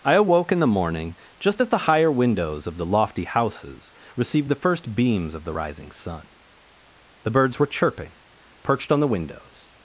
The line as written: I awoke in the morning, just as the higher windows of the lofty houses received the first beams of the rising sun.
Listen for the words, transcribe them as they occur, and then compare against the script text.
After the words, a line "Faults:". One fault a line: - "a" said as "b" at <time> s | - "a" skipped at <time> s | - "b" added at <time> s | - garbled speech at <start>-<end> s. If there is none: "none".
I awoke in the morning, just as the higher windows of the lofty houses received the first beams of the rising sun. The birds were chirping, perched on the windows
Faults:
- "The birds were chirping perched on the windows" added at 7.2 s